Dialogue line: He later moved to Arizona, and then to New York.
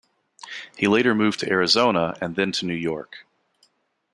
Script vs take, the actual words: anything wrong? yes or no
no